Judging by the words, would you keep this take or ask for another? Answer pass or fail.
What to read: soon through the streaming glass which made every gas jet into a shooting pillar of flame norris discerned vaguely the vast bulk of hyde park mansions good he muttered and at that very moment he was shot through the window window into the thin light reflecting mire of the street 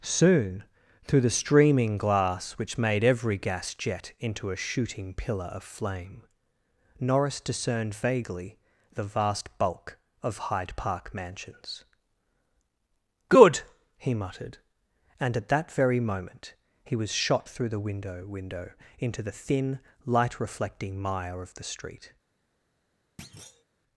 pass